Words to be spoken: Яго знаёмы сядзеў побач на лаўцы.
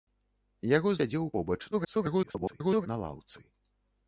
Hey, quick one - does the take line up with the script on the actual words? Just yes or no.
no